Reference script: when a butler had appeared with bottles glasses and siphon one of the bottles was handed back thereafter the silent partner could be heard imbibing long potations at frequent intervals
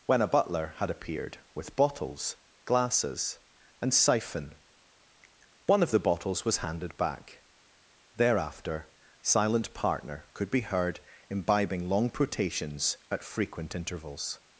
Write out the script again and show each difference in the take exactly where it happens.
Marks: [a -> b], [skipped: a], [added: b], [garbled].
when a butler had appeared with bottles glasses and siphon one of the bottles was handed back thereafter [skipped: the] silent partner could be heard imbibing long potations at frequent intervals